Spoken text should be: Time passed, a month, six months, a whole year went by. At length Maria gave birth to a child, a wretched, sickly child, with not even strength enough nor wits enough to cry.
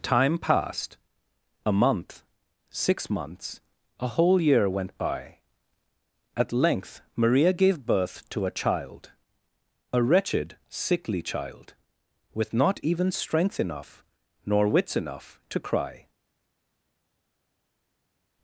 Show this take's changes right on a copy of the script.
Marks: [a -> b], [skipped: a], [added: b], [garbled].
Time passed, a month, six months, a whole year went by. At length Maria gave birth to a child, a wretched, sickly child, with not even strength enough nor wits enough to cry.